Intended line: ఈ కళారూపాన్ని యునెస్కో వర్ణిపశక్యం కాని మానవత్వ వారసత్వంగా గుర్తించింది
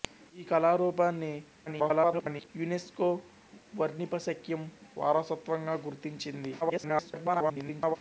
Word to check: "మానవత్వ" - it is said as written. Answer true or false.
false